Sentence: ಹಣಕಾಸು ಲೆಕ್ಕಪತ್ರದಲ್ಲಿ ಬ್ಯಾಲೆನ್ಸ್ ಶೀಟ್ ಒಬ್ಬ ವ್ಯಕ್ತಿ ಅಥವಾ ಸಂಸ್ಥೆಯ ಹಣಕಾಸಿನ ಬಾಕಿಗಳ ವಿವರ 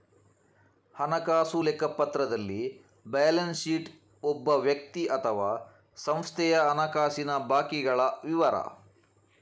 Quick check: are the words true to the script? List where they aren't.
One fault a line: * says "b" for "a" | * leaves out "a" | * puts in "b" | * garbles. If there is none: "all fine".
all fine